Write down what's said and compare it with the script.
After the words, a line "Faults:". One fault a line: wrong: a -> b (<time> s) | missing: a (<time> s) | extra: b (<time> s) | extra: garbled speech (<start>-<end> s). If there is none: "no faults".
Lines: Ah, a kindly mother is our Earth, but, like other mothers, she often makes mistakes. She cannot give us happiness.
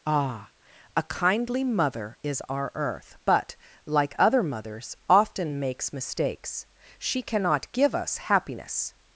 Ah, a kindly mother is our Earth, but, like other mothers, often makes mistakes. She cannot give us happiness.
Faults:
missing: she (5.0 s)